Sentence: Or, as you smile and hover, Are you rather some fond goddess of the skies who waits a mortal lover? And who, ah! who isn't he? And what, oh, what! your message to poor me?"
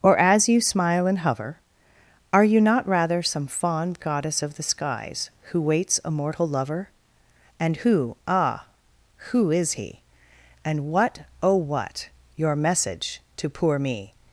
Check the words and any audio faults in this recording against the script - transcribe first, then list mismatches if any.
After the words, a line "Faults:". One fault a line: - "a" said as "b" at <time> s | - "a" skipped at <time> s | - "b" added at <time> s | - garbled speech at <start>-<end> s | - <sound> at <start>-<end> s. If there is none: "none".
Or, as you smile and hover, Are you not rather some fond goddess of the skies who waits a mortal lover? And who, ah! who is he? And what, oh, what! your message to poor me?"
Faults:
- "not" added at 2.6 s
- "isn't" said as "is" at 9.5 s